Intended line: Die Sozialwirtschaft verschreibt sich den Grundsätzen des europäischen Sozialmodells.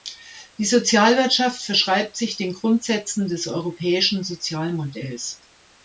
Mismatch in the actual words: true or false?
false